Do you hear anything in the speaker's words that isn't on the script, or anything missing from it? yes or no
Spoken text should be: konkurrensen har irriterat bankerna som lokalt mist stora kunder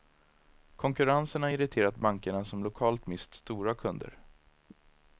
no